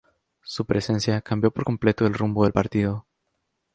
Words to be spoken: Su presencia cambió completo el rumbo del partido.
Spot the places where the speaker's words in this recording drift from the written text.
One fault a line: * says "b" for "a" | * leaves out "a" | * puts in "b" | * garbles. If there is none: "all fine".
* puts in "por"